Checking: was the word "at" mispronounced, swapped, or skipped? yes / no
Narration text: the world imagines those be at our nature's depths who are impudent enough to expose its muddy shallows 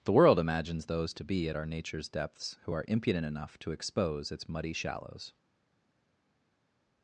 no